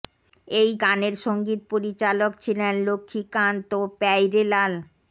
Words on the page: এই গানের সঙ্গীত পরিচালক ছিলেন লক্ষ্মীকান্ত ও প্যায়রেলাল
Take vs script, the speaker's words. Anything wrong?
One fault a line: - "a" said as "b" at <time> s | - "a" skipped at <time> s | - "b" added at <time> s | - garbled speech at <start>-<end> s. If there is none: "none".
none